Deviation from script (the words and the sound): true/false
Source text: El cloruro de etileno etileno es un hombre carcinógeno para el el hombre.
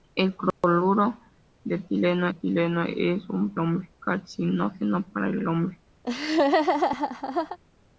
true